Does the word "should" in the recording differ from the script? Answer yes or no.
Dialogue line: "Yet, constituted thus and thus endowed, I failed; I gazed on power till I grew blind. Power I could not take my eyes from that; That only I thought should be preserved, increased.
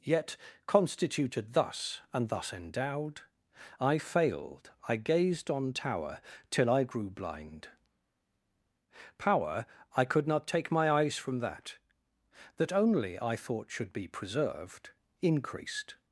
no